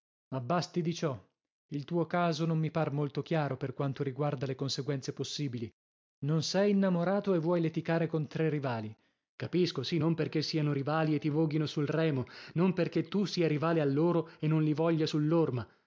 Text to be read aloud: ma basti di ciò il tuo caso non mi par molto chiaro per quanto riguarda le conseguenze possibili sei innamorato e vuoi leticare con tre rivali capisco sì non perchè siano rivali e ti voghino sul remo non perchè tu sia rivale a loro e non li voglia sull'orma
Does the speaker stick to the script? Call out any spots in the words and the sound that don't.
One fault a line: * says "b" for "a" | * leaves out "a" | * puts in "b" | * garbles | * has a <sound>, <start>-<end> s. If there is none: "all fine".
* puts in "non"